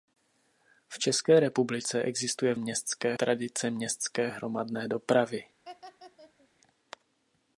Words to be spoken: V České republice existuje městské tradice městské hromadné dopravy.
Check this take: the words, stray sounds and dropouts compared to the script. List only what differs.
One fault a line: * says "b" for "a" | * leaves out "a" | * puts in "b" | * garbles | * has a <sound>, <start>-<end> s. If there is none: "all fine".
* has a laugh, 5.6-6.5 s